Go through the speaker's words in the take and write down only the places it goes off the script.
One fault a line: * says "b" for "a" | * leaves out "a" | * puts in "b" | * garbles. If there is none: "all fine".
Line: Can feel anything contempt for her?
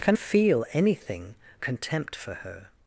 all fine